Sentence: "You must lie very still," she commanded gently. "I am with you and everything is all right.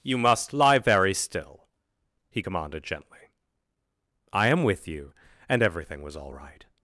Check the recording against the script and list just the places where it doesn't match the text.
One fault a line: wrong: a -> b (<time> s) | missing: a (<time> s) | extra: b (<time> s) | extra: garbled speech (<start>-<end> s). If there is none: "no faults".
wrong: she -> he (2.3 s)
wrong: is -> was (6.0 s)